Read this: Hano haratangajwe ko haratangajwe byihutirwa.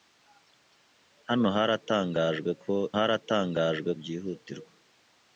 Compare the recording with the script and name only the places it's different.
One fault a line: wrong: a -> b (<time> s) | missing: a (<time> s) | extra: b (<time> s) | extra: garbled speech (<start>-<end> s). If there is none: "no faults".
no faults